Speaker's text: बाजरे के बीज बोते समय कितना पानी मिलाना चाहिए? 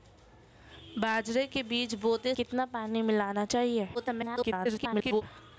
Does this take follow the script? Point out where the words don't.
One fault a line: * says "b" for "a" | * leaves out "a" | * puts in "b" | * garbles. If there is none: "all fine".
* leaves out "समय"
* garbles